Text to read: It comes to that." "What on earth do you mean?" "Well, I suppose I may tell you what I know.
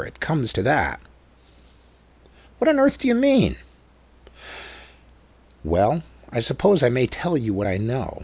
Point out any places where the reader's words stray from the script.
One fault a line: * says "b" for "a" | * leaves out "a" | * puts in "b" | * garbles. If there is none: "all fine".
all fine